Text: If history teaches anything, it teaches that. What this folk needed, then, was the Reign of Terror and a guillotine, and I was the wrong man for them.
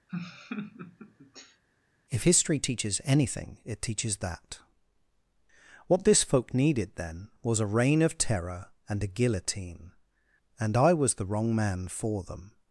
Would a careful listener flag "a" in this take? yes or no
no